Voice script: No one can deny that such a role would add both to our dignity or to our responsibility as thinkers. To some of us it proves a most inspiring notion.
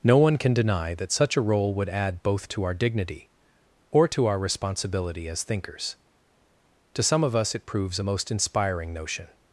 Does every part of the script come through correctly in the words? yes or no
yes